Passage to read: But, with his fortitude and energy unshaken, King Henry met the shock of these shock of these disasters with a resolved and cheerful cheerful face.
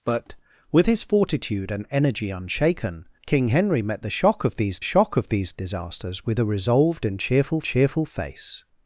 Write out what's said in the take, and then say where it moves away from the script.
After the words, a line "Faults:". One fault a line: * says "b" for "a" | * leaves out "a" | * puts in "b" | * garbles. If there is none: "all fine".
But, with his fortitude and energy unshaken, King Henry met the shock of these shock of these disasters with a resolved and cheerful cheerful face.
Faults:
all fine